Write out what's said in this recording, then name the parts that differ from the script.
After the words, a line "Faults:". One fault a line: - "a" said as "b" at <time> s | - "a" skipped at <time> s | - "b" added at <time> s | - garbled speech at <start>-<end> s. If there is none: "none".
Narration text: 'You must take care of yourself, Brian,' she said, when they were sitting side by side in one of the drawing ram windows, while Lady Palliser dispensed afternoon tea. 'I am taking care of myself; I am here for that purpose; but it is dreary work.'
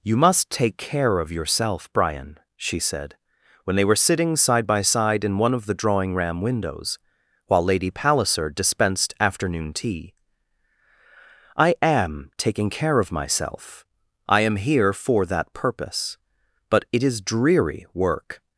'You must take care of yourself, Brian,' she said, when they were sitting side by side in one of the drawing ram windows, while Lady Palliser dispensed afternoon tea. 'I am taking care of myself; I am here for that purpose; but it is dreary work.'
Faults:
none